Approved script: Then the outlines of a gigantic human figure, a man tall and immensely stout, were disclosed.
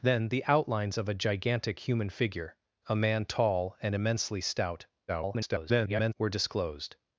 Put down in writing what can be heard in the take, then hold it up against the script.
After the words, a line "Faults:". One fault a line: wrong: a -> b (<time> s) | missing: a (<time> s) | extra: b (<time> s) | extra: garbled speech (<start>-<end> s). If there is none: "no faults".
Then the outlines of a gigantic human figure, a man tall and immensely stout, [garbled] were disclosed.
Faults:
extra: garbled speech (5.1-6.1 s)